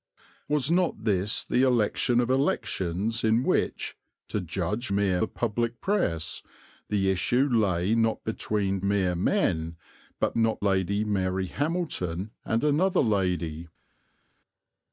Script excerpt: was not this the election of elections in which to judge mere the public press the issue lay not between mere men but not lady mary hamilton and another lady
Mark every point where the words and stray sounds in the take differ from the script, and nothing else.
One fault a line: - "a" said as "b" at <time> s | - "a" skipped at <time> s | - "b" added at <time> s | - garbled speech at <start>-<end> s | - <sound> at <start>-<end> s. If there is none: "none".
none